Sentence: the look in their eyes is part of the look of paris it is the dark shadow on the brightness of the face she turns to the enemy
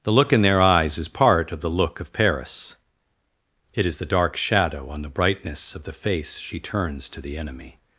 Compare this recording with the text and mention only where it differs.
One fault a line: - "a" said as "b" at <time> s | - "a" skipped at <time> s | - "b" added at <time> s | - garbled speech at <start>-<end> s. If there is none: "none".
none